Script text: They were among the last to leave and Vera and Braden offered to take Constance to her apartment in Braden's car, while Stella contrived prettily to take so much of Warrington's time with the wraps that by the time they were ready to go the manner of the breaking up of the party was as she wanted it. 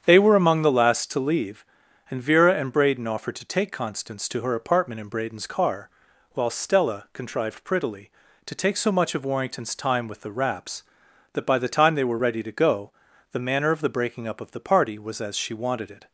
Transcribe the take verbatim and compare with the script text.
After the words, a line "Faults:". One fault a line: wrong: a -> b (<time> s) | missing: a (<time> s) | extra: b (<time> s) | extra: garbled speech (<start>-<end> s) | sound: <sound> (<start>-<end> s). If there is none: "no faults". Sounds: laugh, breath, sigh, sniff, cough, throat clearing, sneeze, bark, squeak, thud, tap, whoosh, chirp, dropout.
They were among the last to leave and Vera and Braden offered to take Constance to her apartment in Braden's car, while Stella contrived prettily to take so much of Warrington's time with the wraps that by the time they were ready to go the manner of the breaking up of the party was as she wanted it.
Faults:
no faults